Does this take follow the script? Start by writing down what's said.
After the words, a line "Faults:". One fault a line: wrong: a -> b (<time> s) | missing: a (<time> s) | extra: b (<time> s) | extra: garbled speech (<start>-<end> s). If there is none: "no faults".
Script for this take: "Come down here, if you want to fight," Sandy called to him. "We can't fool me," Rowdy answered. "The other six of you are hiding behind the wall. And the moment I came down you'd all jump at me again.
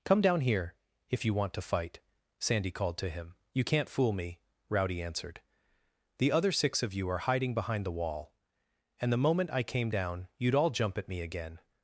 "Come down here, if you want to fight," Sandy called to him. "You can't fool me," Rowdy answered. "The other six of you are hiding behind the wall. And the moment I came down you'd all jump at me again.
Faults:
wrong: We -> You (3.5 s)